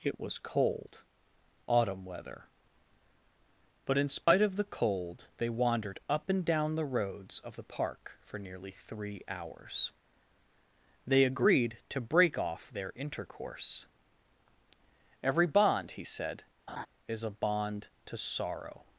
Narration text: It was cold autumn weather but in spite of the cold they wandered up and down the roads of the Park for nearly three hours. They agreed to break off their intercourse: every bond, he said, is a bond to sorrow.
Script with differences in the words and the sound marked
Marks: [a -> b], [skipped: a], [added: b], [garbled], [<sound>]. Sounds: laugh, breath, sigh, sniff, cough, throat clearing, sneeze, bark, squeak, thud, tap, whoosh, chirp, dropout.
It was cold autumn weather but in spite [dropout] of the cold they wandered up and down the roads of the Park for nearly three hours. They agreed to break off their intercourse: every bond, he said, [laugh] is a bond to sorrow.